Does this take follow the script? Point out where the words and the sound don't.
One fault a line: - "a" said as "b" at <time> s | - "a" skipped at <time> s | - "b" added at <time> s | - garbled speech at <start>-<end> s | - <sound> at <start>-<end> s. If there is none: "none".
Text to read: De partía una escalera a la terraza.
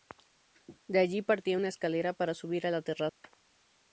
- "allí" added at 1.0 s
- "para subir" added at 2.1 s
- dropout at 3.1-3.2 s